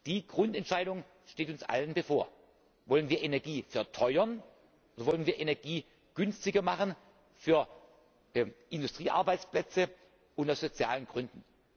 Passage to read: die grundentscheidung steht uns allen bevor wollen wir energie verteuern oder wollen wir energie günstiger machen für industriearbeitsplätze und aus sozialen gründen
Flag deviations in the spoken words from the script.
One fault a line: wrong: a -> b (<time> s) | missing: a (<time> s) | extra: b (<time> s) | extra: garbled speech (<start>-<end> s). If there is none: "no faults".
no faults